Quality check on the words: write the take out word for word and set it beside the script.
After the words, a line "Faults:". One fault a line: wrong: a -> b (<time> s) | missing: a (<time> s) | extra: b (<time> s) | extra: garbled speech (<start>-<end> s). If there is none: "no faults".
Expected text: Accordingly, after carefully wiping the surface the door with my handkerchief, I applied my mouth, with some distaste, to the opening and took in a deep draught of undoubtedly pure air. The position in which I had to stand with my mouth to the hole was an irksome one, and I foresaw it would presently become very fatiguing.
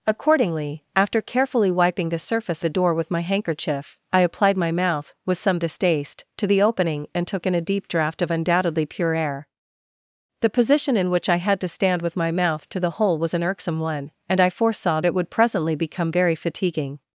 Accordingly, after carefully wiping the surface the door with my handkerchief, I applied my mouth, with some distaste, to the opening and took in a deep draught of undoubtedly pure air. The position in which I had to stand with my mouth to the hole was an irksome one, and I foresaw it would presently become very fatiguing.
Faults:
no faults